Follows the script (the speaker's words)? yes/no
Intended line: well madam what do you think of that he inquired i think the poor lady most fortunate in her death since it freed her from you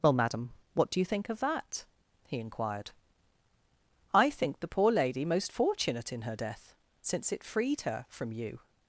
yes